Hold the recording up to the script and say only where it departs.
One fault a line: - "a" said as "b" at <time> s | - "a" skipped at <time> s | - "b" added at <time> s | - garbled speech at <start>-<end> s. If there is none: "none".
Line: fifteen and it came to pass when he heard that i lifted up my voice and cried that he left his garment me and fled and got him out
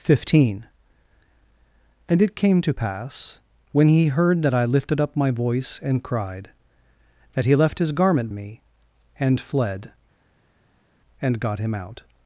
none